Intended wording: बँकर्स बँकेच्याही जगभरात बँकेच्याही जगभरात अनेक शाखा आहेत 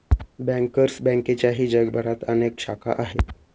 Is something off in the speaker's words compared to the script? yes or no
yes